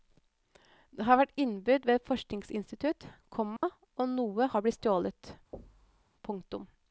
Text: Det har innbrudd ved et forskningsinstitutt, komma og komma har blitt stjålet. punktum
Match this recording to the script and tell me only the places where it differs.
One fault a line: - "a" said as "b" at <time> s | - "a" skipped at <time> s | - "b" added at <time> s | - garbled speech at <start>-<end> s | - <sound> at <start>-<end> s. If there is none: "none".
- "vært" added at 1.2 s
- dropout at 3.6-3.6 s
- "komma" said as "noe" at 4.2 s
- thud at 5.5-6.1 s